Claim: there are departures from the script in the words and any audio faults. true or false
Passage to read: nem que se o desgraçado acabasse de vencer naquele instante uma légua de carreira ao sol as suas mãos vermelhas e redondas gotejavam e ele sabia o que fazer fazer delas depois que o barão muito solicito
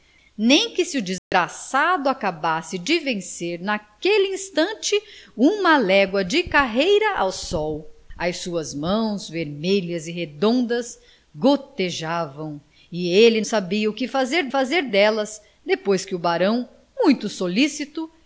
true